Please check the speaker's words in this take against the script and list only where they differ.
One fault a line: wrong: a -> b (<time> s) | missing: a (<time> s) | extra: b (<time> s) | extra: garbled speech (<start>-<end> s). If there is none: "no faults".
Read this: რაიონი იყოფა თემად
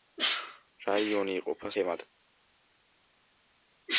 no faults